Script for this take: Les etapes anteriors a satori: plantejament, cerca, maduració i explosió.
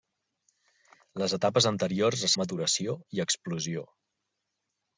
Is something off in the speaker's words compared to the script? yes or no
yes